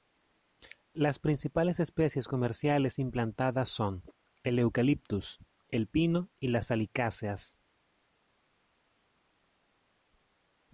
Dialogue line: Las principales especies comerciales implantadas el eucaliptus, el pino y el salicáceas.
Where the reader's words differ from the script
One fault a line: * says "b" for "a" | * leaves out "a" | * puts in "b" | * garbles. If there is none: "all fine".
* puts in "son"
* says "las" for "el"